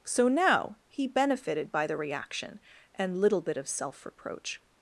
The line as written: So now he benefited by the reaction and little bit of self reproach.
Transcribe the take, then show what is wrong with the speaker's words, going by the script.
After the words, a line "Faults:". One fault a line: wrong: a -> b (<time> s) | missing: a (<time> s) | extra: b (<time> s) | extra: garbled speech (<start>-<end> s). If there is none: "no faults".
So now he benefited by the reaction and little bit of self reproach.
Faults:
no faults